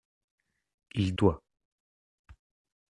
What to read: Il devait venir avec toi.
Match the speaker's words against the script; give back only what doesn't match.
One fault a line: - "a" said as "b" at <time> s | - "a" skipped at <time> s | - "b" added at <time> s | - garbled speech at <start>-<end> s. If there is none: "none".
- "devait venir avec" skipped at 1.1 s